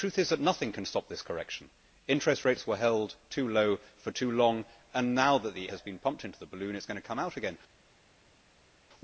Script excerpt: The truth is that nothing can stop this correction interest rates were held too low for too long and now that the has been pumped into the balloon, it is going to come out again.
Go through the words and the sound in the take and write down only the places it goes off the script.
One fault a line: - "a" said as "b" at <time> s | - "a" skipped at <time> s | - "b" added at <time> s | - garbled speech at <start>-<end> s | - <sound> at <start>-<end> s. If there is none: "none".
none